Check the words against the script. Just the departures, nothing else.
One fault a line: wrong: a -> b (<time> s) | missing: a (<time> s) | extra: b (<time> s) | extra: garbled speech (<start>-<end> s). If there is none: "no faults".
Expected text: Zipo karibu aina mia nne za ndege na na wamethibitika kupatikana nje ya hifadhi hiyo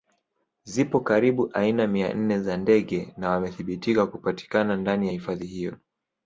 missing: na (3.3 s)
wrong: nje -> ndani (4.8 s)